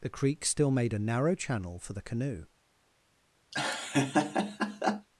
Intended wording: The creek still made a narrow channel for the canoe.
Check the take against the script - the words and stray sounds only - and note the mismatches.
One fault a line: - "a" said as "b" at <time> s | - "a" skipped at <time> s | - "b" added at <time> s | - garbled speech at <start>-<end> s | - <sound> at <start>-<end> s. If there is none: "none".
- laugh at 3.5-5.1 s